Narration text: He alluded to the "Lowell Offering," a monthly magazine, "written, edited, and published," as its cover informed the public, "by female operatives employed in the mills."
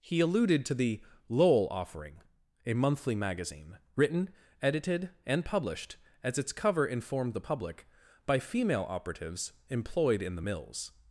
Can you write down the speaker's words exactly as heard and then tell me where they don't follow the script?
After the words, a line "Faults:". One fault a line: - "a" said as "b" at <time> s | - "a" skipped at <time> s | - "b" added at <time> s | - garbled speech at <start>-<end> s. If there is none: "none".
He alluded to the "Lowell Offering," a monthly magazine, "written, edited, and published," as its cover informed the public, "by female operatives employed in the mills."
Faults:
none